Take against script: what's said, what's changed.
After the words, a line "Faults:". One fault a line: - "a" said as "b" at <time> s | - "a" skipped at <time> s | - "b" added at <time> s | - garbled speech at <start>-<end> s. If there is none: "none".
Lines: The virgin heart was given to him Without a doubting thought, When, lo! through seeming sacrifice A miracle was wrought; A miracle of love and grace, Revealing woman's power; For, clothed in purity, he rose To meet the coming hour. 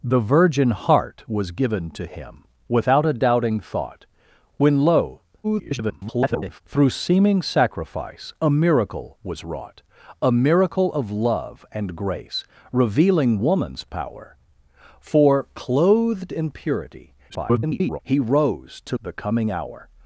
The virgin heart was given to him Without a doubting thought, When, lo! [garbled] through seeming sacrifice A miracle was wrought; A miracle of love and grace, Revealing woman's power; For, clothed in purity, [garbled] he rose To the coming hour.
Faults:
- garbled speech at 5.4-6.6 s
- garbled speech at 17.3-18.0 s
- "meet" skipped at 19.0 s